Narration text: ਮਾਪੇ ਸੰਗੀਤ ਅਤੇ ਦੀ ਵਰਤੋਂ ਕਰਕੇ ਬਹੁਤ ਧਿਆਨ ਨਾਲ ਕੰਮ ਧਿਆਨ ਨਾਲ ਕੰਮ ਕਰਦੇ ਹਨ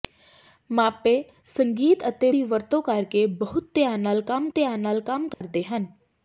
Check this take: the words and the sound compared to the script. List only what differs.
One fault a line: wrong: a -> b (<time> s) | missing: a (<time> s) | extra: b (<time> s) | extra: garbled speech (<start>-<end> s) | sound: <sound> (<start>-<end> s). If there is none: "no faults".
sound: dropout (5.3-5.4 s)